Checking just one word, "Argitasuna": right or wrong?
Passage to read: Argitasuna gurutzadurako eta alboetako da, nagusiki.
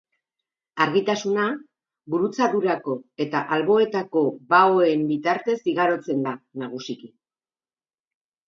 right